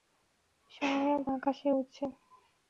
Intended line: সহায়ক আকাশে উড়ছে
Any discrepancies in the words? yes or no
no